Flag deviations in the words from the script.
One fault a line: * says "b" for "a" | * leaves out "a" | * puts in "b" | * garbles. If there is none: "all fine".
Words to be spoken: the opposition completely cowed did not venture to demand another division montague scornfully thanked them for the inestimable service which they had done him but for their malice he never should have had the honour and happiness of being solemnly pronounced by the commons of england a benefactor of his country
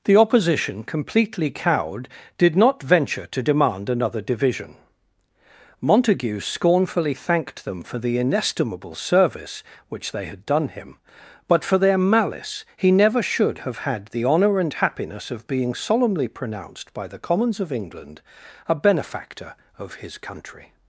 all fine